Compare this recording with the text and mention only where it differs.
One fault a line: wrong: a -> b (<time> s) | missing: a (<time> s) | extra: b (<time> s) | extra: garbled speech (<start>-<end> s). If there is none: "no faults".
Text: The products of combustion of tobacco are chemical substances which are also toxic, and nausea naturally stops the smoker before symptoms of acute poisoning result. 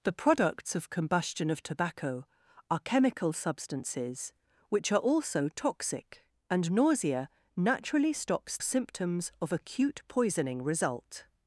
missing: the smoker before (8.6 s)